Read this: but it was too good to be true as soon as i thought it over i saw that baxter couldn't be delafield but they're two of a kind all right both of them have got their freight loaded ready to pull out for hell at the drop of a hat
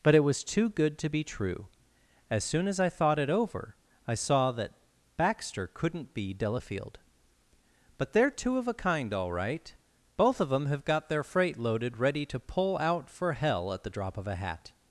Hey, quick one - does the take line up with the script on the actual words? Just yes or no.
yes